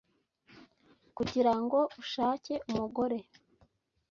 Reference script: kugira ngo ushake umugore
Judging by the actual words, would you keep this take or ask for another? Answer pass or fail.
pass